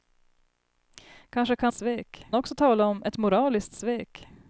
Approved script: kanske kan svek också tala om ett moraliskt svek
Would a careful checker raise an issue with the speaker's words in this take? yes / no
no